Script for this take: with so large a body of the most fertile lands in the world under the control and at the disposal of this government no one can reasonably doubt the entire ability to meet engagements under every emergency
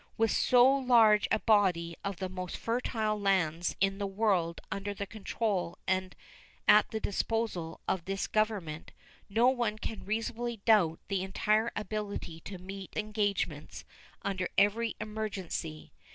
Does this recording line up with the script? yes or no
yes